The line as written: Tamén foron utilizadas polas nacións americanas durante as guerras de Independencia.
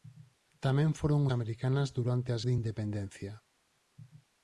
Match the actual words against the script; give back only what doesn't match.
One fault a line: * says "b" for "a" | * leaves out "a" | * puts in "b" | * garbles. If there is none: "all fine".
* leaves out "utilizadas polas nacións"
* leaves out "guerras"